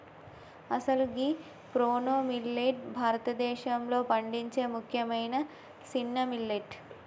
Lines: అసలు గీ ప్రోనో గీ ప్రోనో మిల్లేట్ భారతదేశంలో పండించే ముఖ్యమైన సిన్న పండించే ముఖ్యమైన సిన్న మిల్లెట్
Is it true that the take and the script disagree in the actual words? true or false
true